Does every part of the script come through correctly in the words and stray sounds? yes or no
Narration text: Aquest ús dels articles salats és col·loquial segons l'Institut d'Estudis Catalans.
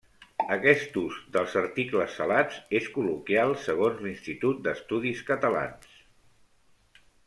yes